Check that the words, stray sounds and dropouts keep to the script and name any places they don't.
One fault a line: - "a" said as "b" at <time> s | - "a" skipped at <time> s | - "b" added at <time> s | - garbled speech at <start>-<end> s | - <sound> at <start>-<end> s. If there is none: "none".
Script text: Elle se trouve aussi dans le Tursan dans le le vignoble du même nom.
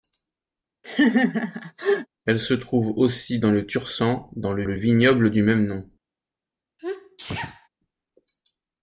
- laugh at 0.8-2.1 s
- sneeze at 6.8-7.7 s